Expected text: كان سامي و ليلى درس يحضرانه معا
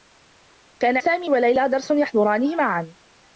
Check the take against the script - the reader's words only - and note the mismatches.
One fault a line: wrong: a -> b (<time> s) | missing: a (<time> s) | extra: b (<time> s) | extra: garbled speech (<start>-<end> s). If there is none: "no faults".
no faults